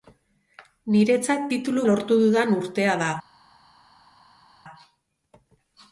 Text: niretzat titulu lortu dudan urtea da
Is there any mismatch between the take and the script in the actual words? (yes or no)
no